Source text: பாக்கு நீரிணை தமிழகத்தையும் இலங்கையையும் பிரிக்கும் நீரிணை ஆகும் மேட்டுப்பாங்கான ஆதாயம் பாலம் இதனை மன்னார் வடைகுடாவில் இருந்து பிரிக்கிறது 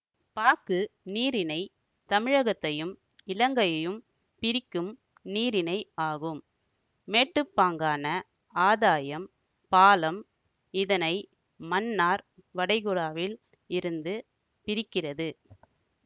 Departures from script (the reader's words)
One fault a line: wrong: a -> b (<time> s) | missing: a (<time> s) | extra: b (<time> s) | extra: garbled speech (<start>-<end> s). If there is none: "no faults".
no faults